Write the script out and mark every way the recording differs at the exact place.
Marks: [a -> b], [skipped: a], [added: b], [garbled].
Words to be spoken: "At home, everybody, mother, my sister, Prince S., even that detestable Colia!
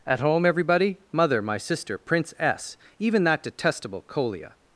"At home, everybody, mother, my sister, Prince S., even that detestable Colia!